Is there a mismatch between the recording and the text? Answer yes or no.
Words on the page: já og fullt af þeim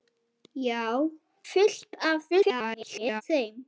yes